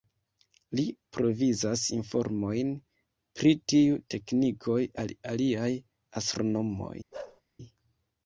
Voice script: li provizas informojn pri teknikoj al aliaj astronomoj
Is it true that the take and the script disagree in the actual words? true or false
true